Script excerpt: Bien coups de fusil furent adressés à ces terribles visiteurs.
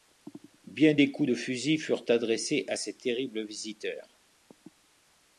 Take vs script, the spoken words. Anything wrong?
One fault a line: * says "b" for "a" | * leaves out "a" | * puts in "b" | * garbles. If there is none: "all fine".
* puts in "des"